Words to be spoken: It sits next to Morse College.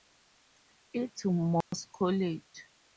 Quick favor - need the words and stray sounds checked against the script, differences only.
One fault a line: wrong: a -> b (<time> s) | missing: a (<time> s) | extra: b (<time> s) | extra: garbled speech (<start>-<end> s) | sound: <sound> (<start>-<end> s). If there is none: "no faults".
missing: sits next (1.2 s)
sound: dropout (1.6-1.7 s)